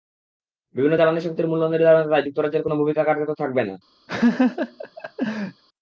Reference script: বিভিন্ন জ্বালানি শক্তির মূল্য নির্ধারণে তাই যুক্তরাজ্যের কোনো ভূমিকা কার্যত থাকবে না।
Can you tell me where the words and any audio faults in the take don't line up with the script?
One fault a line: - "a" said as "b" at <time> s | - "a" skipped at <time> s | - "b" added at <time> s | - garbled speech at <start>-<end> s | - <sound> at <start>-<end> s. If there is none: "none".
- laugh at 4.1-5.6 s